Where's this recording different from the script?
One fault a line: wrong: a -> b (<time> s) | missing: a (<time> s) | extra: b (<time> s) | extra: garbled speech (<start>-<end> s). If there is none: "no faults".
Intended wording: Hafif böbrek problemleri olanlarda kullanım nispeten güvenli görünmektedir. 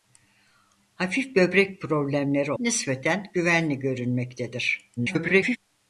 missing: olanlarda kullanım (2.5 s)
extra: garbled speech (5.0-5.6 s)